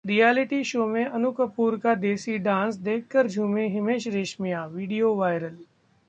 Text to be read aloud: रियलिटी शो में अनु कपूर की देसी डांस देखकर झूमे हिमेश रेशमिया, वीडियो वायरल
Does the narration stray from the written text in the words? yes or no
yes